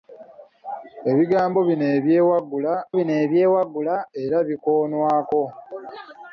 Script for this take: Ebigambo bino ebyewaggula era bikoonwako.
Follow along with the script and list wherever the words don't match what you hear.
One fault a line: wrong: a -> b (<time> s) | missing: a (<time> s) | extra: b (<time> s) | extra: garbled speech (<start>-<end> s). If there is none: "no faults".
extra: bino ebyewaggula (3.0 s)